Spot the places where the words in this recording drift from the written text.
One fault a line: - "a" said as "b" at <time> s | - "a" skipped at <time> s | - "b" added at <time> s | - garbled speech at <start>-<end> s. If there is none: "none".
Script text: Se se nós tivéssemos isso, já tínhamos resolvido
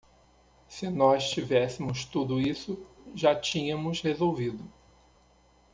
- "se" skipped at 0.9 s
- "tudo" added at 2.0 s